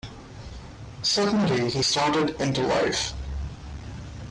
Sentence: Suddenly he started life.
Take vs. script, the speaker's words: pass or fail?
fail